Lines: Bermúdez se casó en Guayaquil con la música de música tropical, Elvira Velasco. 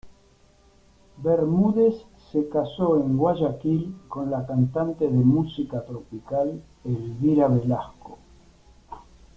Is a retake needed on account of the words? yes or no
yes